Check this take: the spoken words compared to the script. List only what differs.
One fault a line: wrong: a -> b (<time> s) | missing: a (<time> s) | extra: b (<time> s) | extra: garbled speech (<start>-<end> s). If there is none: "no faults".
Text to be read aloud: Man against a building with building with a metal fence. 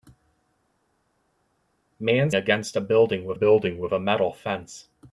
no faults